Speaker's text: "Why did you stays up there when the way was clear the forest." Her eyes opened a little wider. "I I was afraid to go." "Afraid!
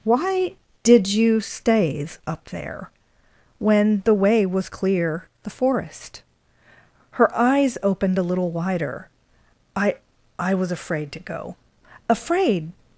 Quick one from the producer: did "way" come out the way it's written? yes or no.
yes